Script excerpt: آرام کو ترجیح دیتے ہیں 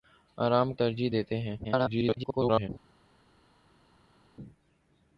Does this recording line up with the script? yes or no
no